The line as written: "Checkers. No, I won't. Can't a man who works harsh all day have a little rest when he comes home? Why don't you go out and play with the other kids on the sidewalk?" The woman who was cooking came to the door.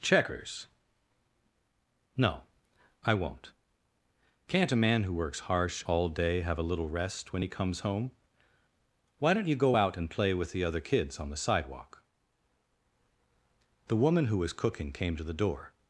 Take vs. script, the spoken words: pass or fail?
pass